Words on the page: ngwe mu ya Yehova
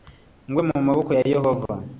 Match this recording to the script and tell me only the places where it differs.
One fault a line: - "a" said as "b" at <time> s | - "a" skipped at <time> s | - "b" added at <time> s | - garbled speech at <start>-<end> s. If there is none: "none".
- "maboko" added at 0.9 s